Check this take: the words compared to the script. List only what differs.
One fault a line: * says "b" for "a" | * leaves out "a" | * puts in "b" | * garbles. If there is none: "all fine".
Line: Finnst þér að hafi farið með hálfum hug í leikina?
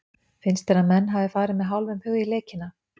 * puts in "menn"